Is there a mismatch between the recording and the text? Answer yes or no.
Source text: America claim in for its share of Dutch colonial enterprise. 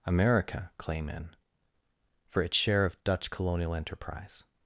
no